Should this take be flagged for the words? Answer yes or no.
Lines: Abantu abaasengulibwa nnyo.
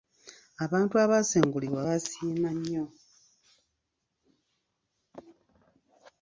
yes